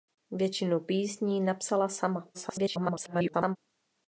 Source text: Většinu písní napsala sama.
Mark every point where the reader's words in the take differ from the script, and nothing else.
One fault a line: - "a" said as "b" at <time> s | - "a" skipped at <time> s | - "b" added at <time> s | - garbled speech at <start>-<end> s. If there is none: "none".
- garbled speech at 2.3-3.6 s